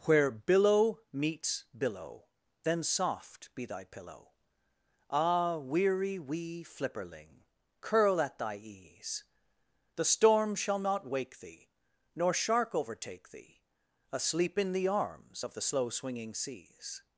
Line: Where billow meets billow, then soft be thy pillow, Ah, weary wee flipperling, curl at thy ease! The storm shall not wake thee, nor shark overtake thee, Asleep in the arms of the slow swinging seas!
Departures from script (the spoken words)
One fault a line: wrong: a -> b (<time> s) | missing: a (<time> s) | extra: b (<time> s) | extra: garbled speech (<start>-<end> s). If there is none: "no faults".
no faults